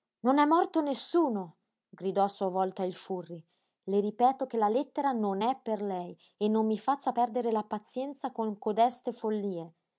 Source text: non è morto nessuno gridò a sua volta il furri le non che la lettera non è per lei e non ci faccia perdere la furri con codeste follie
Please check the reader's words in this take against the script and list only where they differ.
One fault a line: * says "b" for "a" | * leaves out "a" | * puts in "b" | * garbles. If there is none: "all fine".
* says "ripeto" for "non"
* says "mi" for "ci"
* says "pazienza" for "furri"